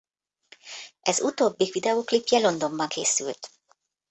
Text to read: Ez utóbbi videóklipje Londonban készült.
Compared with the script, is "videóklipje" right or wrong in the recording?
right